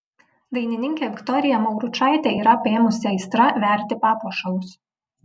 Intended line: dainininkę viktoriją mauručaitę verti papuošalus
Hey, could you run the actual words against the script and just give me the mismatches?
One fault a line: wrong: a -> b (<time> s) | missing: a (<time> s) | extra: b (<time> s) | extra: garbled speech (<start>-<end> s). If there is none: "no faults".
extra: yra apėmusi aistra (2.4 s)